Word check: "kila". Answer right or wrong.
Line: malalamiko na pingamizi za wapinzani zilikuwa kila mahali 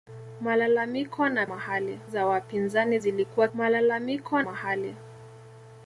wrong